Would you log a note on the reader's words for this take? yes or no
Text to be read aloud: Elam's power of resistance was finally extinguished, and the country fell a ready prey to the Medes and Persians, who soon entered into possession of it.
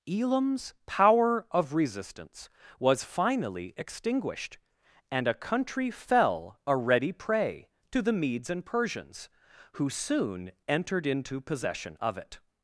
yes